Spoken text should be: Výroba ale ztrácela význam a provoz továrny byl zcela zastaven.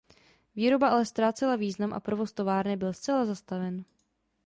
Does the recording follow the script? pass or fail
pass